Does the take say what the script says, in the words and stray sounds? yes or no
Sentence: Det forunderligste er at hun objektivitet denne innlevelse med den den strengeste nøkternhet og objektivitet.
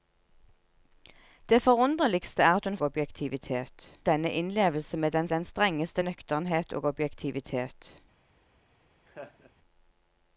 no